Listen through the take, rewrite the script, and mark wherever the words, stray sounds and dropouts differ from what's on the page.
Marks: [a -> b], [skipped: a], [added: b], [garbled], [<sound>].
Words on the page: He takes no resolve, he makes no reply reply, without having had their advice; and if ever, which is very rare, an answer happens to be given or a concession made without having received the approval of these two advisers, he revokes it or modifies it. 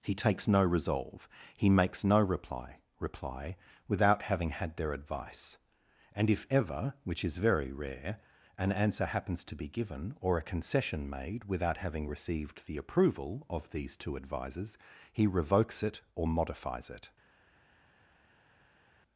He takes no resolve, he makes no reply reply, without having had their advice; and if ever, which is very rare, an answer happens to be given or a concession made without having received the approval of these two advisers, he revokes it or modifies it.